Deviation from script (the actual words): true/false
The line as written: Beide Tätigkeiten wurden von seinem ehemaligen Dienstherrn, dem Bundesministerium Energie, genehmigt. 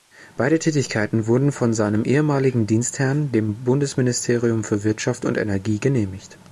true